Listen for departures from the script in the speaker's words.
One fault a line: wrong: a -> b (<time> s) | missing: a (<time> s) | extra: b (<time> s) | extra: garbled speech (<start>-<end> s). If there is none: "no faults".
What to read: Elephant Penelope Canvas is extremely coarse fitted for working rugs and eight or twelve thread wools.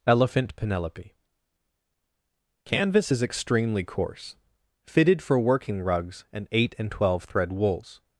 wrong: or -> and (6.8 s)